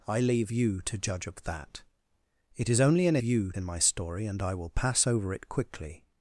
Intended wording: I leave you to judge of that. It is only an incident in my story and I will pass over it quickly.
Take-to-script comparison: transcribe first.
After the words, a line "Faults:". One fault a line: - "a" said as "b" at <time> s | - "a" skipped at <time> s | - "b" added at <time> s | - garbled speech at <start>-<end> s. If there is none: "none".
I leave you to judge of that. It is only an you in my story and I will pass over it quickly.
Faults:
- "incident" said as "you" at 3.2 s